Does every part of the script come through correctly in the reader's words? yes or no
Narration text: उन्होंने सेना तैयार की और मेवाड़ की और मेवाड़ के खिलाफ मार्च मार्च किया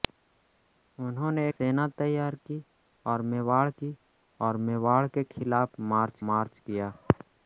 yes